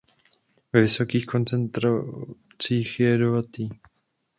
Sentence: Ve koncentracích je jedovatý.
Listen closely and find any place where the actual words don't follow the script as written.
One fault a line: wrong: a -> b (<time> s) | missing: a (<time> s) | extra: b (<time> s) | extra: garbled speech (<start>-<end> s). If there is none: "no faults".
extra: vysokých (0.8 s)